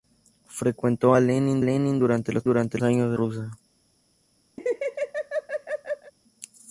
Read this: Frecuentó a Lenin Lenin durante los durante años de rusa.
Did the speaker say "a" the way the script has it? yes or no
yes